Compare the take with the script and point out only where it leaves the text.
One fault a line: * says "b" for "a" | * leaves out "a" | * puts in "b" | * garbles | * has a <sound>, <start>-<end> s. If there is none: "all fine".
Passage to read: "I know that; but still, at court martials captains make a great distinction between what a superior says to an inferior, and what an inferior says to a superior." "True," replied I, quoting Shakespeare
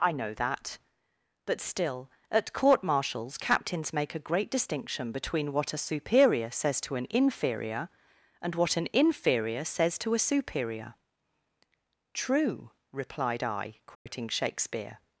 * has a dropout, 13.9-14.1 s